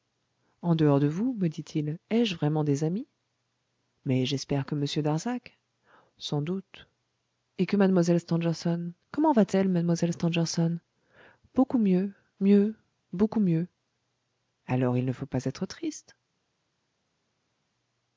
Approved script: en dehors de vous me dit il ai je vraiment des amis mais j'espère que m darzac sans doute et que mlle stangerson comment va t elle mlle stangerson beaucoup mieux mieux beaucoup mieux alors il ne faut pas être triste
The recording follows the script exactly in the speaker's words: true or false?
true